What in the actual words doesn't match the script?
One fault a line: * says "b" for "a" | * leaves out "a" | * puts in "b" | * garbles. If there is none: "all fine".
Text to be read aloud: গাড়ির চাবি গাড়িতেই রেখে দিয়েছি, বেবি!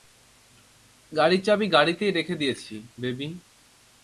all fine